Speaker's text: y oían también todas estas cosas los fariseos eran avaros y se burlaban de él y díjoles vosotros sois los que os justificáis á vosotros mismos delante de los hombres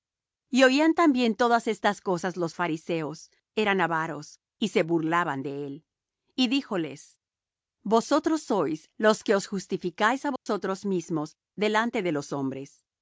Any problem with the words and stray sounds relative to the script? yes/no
yes